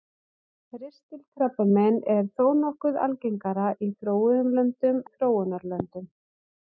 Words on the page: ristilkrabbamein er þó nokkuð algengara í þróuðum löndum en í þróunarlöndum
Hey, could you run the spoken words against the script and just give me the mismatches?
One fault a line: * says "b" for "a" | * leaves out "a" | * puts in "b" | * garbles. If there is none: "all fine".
* leaves out "en"